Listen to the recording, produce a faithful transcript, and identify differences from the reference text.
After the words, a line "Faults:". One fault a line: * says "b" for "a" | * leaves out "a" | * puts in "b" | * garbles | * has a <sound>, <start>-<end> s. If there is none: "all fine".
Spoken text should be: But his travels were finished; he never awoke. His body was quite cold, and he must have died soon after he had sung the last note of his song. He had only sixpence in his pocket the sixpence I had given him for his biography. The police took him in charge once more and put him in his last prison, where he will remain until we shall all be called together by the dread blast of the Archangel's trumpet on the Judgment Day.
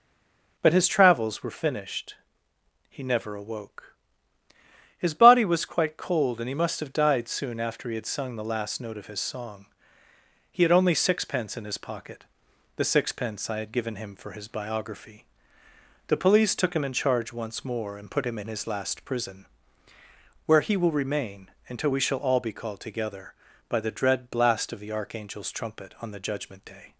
But his travels were finished; he never awoke. His body was quite cold, and he must have died soon after he had sung the last note of his song. He had only sixpence in his pocket the sixpence I had given him for his biography. The police took him in charge once more and put him in his last prison, where he will remain until we shall all be called together by the dread blast of the Archangel's trumpet on the Judgment Day.
Faults:
all fine